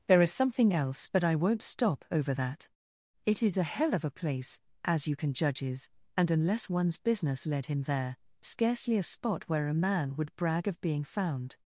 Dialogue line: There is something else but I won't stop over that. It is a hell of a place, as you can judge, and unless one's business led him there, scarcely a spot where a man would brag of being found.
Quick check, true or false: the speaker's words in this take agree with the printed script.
false